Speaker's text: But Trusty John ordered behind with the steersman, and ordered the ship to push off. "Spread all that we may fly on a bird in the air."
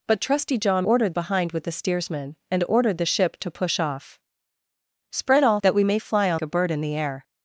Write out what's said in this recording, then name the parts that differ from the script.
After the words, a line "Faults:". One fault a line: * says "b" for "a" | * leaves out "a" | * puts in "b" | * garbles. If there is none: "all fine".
But Trusty John ordered behind with the steersman, and ordered the ship to push off. "Spread all that we may fly on a bird in the air."
Faults:
all fine